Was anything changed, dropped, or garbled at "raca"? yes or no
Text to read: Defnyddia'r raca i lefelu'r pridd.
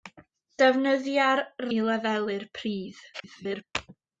yes